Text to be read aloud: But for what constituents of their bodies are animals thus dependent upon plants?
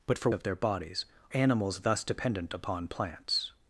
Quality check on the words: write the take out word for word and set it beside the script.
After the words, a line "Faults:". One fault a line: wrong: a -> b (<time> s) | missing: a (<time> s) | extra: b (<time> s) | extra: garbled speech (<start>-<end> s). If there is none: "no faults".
But for of their bodies animals thus dependent upon plants?
Faults:
missing: what constituents (0.3 s)
missing: are (1.0 s)